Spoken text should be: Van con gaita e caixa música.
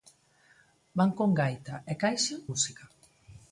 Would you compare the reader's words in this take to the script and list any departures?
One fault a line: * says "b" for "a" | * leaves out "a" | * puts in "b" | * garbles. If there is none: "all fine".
all fine